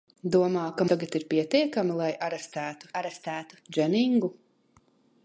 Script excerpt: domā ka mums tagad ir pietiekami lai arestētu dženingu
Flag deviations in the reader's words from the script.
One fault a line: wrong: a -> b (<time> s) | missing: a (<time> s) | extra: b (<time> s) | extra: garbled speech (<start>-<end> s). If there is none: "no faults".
missing: mums (0.9 s)
extra: arestētu (3.0 s)